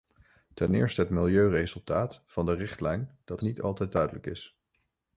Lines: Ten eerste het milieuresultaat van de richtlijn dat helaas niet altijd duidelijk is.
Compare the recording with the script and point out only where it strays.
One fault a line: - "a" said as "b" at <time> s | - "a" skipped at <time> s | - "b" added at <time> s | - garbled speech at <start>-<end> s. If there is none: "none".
- "helaas" skipped at 3.4 s